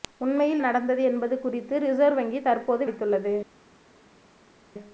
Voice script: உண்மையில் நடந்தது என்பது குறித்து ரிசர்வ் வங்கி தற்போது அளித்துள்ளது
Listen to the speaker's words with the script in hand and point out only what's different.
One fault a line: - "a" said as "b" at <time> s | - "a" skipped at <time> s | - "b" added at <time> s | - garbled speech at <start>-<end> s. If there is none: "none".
none